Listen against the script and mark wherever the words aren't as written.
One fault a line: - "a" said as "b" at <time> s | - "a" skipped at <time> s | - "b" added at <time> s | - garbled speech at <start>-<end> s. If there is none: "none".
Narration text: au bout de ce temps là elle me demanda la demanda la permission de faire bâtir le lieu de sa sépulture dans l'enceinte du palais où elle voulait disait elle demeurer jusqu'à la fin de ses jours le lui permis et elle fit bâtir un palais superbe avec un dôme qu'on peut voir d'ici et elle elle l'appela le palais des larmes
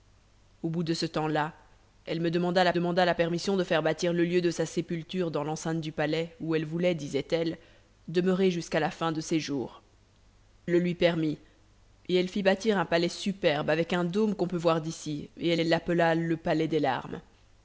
none